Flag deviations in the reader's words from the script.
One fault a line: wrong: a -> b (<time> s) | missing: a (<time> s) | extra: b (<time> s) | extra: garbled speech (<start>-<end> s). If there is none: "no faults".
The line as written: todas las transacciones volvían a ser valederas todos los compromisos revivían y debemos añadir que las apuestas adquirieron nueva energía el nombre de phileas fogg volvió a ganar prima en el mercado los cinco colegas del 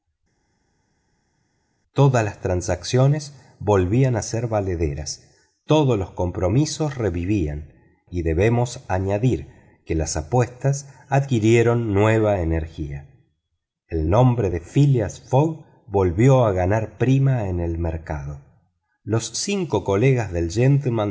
no faults